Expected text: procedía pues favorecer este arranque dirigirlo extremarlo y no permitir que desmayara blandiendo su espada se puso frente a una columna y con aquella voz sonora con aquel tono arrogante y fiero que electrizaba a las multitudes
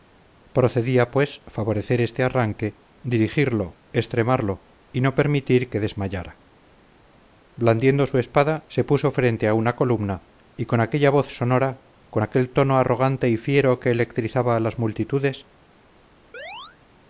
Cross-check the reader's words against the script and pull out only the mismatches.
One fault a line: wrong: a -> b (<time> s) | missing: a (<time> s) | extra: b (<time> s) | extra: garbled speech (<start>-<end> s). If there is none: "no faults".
no faults